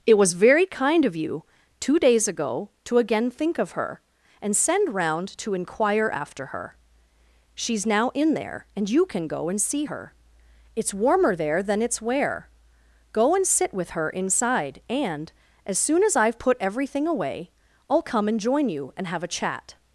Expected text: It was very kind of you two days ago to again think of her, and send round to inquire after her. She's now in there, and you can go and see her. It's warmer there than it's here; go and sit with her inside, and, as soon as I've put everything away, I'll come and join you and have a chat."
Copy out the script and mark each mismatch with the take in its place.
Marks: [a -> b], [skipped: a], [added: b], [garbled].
It was very kind of you two days ago to again think of her, and send round to inquire after her. She's now in there, and you can go and see her. It's warmer there than it's [here; -> where] go and sit with her inside, and, as soon as I've put everything away, I'll come and join you and have a chat."